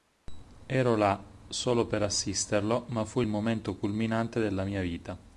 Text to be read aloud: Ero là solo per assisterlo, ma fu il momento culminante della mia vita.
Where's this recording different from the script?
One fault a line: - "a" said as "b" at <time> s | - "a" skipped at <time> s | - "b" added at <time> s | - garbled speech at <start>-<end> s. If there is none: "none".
none